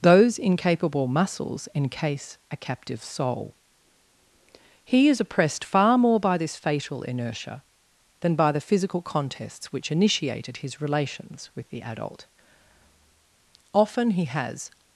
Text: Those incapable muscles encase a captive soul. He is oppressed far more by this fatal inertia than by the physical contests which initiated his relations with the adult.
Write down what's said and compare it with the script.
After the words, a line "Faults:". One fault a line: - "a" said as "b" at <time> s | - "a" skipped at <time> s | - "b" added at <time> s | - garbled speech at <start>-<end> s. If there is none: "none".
Those incapable muscles encase a captive soul. He is oppressed far more by this fatal inertia than by the physical contests which initiated his relations with the adult. Often he has
Faults:
- "Often he has" added at 13.7 s